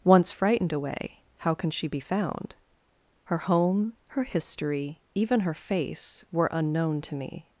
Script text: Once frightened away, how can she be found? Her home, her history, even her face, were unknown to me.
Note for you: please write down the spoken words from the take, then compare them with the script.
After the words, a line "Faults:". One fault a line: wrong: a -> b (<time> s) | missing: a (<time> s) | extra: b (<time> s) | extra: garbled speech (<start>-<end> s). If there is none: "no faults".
Once frightened away, how can she be found? Her home, her history, even her face, were unknown to me.
Faults:
no faults